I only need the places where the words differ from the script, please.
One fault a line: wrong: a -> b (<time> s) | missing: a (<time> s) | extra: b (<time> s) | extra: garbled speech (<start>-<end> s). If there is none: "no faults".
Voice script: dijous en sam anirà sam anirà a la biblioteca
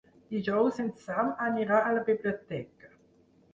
missing: sam anirà (1.8 s)